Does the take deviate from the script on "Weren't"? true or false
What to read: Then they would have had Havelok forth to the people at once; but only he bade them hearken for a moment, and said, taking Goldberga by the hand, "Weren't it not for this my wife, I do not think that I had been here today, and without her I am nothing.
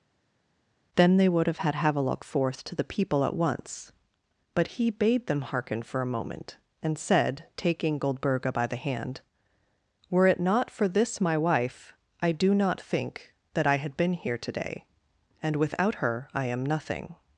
true